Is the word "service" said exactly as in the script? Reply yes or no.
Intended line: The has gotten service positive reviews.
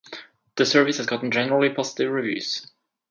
no